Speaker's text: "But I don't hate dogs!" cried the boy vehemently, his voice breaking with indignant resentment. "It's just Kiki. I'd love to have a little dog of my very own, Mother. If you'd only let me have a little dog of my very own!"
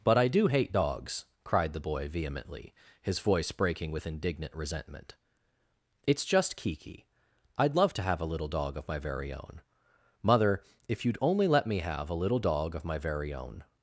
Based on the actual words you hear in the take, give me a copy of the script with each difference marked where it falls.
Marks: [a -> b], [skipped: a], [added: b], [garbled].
"But I [don't -> do] hate dogs!" cried the boy vehemently, his voice breaking with indignant resentment. "It's just Kiki. I'd love to have a little dog of my very own, Mother. If you'd only let me have a little dog of my very own!"